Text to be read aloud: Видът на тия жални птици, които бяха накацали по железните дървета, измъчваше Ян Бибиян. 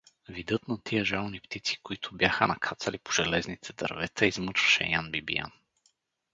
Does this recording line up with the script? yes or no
yes